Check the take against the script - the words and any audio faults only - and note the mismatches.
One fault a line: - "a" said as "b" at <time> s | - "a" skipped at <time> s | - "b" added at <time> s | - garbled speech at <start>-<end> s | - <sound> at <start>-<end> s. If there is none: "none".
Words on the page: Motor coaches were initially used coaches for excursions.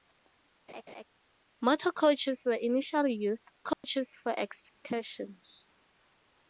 - laugh at 0.7-1.0 s
- dropout at 3.7-3.8 s